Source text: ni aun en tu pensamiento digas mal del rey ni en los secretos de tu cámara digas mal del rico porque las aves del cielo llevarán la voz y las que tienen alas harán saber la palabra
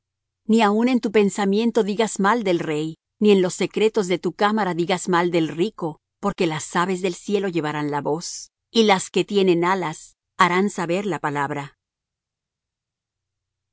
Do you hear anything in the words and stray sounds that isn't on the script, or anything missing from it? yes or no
no